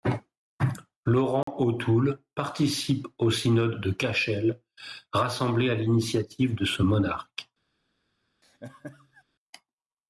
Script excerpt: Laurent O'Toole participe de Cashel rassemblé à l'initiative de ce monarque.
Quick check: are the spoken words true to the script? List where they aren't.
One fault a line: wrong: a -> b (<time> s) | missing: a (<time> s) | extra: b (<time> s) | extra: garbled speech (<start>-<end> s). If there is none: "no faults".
extra: au Synode (3.2 s)